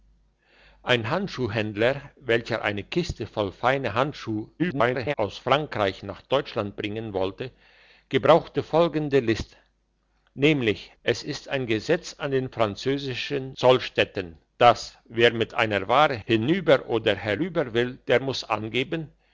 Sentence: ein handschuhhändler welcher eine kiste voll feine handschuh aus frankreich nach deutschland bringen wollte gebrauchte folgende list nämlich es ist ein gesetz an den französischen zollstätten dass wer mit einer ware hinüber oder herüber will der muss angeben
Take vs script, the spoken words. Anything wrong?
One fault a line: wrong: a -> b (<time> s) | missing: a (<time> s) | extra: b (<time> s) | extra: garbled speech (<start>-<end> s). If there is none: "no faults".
extra: garbled speech (4.6-5.1 s)